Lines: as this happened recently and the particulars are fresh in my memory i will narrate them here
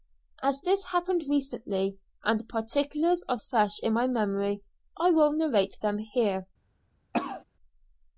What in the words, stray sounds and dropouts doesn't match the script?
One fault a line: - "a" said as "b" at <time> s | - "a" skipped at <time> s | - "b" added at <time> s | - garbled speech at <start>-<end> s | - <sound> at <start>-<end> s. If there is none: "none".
- cough at 7.1-7.4 s